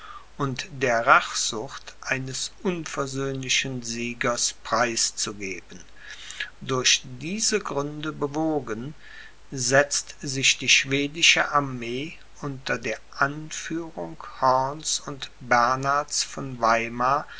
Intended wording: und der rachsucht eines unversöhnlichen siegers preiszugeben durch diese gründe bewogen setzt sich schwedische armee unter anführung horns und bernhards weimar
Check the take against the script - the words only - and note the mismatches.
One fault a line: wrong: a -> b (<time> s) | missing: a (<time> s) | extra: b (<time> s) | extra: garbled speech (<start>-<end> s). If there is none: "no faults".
extra: die (10.6 s)
extra: der (12.8 s)
extra: von (16.2 s)